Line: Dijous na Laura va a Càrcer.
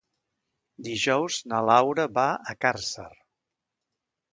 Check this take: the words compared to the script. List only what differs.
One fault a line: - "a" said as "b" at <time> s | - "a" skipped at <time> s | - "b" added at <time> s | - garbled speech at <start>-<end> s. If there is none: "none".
none